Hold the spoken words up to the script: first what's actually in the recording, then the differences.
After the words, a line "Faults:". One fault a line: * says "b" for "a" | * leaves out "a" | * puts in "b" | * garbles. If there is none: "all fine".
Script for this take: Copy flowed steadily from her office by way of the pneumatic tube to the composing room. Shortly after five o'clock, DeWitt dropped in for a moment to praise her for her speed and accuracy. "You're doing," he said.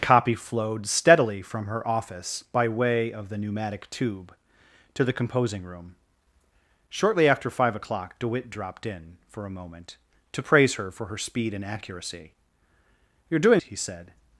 Copy flowed steadily from her office by way of the pneumatic tube to the composing room. Shortly after five o'clock, DeWitt dropped in for a moment to praise her for her speed and accuracy. "You're doing," he said.
Faults:
all fine